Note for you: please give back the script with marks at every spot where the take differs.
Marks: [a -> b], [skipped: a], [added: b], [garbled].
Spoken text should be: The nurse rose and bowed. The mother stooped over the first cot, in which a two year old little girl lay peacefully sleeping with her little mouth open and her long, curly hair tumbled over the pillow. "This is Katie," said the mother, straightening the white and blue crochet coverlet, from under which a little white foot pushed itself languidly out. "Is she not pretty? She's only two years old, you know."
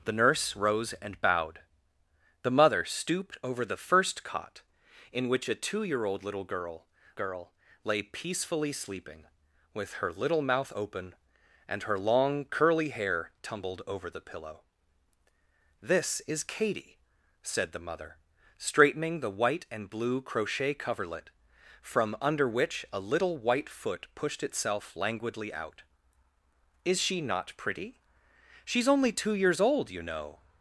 The nurse rose and bowed. The mother stooped over the first cot, in which a two year old little girl [added: girl] lay peacefully sleeping with her little mouth open and her long, curly hair tumbled over the pillow. "This is Katie," said the mother, straightening the white and blue crochet coverlet, from under which a little white foot pushed itself languidly out. "Is she not pretty? She's only two years old, you know."